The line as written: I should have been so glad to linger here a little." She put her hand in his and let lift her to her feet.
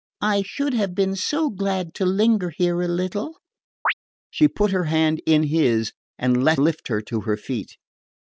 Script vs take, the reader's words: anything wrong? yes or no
no